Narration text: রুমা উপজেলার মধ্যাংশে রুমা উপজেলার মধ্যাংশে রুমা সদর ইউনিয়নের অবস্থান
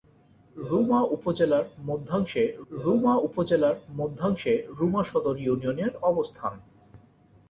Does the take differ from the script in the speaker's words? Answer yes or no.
no